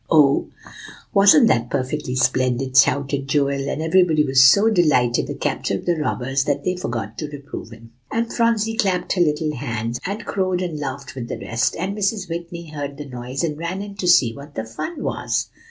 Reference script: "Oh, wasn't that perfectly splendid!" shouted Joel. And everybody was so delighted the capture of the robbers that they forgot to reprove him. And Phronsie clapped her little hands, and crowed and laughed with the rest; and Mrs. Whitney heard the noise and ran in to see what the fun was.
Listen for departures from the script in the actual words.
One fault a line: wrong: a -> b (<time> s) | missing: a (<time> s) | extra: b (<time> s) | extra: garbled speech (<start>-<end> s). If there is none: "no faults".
no faults